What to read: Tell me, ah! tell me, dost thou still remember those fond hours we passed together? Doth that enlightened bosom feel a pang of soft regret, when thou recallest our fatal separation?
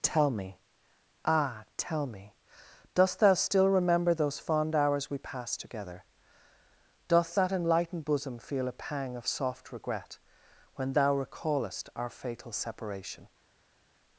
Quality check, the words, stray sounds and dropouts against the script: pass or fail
pass